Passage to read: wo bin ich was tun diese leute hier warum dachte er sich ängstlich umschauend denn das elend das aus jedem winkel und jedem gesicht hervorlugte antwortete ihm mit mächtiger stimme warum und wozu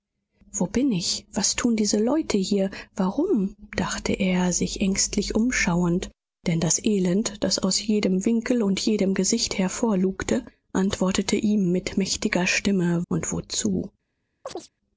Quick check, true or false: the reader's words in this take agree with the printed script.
false